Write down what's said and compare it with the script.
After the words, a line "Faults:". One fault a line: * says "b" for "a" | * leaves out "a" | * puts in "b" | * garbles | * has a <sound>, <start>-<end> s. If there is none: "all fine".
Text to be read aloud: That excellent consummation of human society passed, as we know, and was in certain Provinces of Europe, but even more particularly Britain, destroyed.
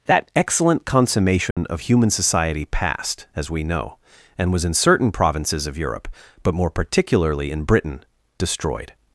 That excellent consummation of human society passed, as we know, and was in certain Provinces of Europe, but more particularly in Britain, destroyed.
Faults:
* has a dropout, 1.5-1.6 s
* leaves out "even"
* puts in "in"